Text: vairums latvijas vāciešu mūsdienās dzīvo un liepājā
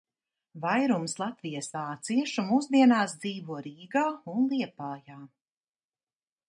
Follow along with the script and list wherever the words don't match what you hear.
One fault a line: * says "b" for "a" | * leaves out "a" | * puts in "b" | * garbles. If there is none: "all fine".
* puts in "rīgā"